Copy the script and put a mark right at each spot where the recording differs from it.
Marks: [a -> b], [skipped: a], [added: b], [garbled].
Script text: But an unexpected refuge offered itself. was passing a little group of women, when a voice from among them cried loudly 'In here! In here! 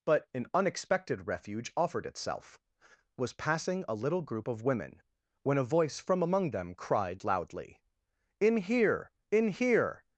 But an unexpected refuge offered itself. was passing a little group of women, when a voice from among them cried loudly 'In here! In here!